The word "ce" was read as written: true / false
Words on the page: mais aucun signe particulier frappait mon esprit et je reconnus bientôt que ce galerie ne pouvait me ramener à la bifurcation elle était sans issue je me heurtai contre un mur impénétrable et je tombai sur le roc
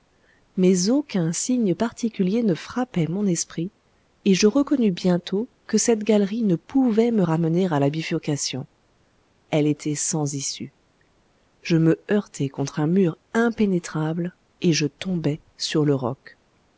false